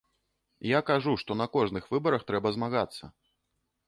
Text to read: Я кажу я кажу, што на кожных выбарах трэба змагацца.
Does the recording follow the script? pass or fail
fail